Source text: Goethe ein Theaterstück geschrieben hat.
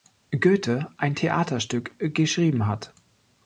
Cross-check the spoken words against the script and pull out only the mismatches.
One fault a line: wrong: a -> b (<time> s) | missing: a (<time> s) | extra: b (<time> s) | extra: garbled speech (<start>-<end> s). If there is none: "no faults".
no faults